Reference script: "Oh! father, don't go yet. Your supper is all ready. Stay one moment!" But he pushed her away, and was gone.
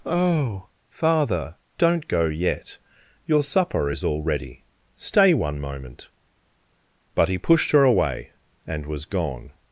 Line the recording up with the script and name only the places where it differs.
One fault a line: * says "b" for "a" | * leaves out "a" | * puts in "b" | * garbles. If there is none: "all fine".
all fine